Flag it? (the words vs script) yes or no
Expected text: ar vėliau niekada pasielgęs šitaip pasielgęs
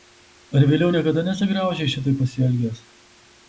yes